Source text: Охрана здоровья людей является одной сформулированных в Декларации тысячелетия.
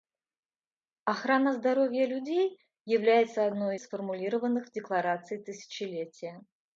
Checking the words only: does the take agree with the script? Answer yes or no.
yes